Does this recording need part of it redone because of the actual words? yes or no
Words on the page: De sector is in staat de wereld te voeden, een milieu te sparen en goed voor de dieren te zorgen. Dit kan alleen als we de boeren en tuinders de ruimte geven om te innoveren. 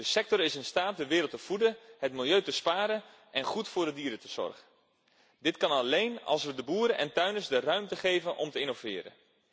yes